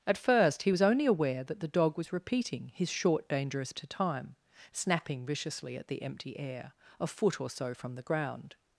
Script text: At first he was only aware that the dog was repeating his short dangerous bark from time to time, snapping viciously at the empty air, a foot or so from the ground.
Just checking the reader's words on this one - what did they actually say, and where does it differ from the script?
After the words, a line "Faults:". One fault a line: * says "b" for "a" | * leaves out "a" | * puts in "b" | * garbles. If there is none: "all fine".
At first he was only aware that the dog was repeating his short dangerous to time, snapping viciously at the empty air, a foot or so from the ground.
Faults:
* leaves out "bark from time"